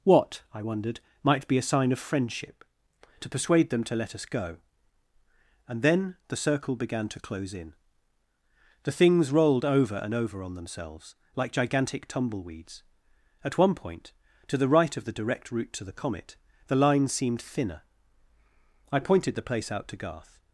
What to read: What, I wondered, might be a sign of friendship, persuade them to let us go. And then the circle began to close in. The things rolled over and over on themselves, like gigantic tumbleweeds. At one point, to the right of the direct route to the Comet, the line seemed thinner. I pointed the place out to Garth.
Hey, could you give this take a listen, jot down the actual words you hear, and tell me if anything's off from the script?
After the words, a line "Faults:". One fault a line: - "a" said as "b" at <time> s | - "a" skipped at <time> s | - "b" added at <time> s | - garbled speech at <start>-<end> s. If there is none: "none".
What, I wondered, might be a sign of friendship, to persuade them to let us go. And then the circle began to close in. The things rolled over and over on themselves, like gigantic tumbleweeds. At one point, to the right of the direct route to the Comet, the line seemed thinner. I pointed the place out to Garth.
Faults:
- "to" added at 3.2 s